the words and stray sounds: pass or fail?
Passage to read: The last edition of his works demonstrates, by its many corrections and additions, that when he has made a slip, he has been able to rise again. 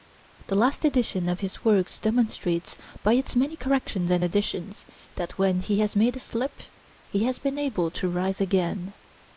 pass